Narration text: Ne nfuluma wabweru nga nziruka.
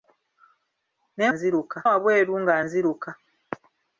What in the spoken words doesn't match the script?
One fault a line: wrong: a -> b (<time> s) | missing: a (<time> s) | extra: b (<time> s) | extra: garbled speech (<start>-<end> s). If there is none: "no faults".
wrong: nfuluma -> nziruka (1.3 s)